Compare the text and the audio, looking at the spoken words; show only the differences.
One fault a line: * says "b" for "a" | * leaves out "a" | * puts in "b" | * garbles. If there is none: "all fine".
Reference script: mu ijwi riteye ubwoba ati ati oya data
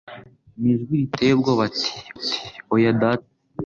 all fine